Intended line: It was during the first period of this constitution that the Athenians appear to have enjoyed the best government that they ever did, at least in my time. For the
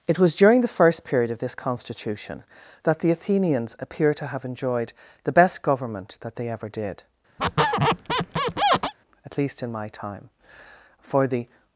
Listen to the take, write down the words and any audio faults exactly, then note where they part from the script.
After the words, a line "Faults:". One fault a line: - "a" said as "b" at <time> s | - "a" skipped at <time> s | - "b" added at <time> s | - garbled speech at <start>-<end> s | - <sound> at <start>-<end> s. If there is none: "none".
It was during the first period of this constitution that the Athenians appear to have enjoyed the best government that they ever did, at least in my time. For the
Faults:
- squeak at 7.4-8.9 s